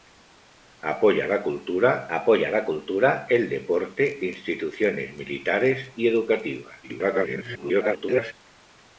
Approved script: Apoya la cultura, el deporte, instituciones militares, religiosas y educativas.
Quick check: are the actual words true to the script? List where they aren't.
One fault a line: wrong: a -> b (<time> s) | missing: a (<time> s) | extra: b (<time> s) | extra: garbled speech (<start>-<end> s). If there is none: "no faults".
extra: apoya la cultura (2.2 s)
missing: religiosas (5.9 s)
extra: garbled speech (6.8-8.3 s)